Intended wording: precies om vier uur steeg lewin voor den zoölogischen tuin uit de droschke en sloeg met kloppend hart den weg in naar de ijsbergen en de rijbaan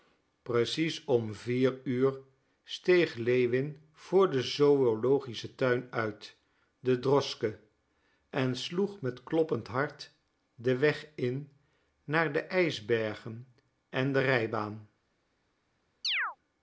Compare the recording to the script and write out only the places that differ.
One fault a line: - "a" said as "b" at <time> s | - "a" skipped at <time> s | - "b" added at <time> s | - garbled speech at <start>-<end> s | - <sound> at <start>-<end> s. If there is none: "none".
- chirp at 16.0-16.4 s